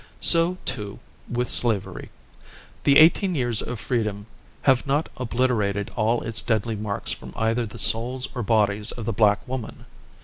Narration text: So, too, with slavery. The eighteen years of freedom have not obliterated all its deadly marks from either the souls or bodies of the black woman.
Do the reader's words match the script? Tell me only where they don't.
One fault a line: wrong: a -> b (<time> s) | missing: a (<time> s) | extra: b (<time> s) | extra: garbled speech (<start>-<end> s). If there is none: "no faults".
no faults